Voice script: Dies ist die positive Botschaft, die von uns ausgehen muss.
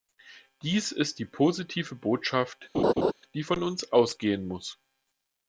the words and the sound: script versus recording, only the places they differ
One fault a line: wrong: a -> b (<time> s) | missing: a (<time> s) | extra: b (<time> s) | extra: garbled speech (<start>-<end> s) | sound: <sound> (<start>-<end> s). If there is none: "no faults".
sound: laugh (2.7-3.1 s)